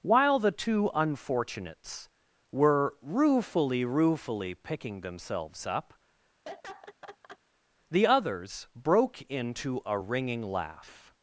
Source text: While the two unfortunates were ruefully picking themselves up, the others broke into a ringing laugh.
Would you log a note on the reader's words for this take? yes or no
yes